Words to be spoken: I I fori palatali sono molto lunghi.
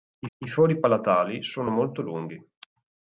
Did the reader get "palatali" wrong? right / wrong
right